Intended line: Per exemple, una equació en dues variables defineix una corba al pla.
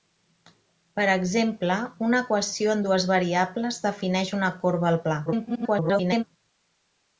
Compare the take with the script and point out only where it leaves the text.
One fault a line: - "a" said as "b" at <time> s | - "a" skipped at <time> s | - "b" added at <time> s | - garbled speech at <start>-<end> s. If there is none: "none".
- garbled speech at 5.3-6.2 s